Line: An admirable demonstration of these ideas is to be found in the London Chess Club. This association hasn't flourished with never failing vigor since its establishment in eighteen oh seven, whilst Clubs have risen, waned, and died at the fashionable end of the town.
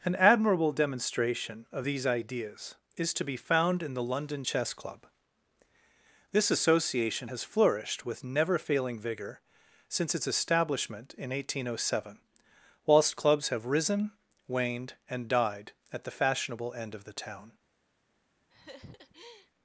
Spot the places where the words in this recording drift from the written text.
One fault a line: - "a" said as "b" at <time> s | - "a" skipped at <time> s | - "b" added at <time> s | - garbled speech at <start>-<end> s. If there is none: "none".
- "hasn't" said as "has" at 7.3 s